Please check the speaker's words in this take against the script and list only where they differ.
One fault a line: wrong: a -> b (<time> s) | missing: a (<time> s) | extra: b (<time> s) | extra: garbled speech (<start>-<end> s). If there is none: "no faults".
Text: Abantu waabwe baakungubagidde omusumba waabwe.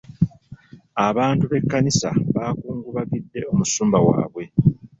wrong: waabwe -> b'ekkanisa (1.5 s)